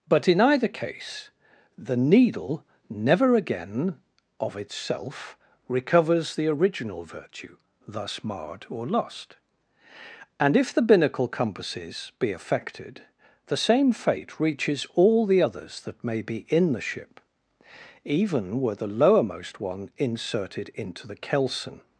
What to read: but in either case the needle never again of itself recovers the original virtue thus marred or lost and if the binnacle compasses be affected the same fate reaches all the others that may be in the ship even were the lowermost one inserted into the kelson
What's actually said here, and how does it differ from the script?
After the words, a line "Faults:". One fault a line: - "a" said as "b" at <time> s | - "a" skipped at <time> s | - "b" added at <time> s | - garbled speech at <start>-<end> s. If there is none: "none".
but in either case the needle never again of itself recovers the original virtue thus marred or lost and if the binnacle compasses be affected the same fate reaches all the others that may be in the ship even were the lowermost one inserted into the kelson
Faults:
none